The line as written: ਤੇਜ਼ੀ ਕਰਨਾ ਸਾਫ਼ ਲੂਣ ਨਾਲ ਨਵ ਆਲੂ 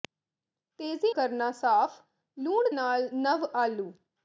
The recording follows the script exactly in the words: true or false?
true